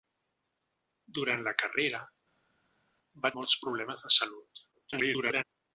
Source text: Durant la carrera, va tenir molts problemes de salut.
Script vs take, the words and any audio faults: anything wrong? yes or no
yes